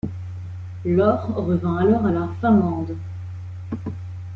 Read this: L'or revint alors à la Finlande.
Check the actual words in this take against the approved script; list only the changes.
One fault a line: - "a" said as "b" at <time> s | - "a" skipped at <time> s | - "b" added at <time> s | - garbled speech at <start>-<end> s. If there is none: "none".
none